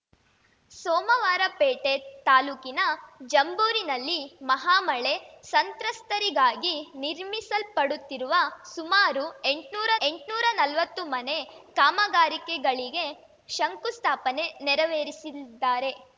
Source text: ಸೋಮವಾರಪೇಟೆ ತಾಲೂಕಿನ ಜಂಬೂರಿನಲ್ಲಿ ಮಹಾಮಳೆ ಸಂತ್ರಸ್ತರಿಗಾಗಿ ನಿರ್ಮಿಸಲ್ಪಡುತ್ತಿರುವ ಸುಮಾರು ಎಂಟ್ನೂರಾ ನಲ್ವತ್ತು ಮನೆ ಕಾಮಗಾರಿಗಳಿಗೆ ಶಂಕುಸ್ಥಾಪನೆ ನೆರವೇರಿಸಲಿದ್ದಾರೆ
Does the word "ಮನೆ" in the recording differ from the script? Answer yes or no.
no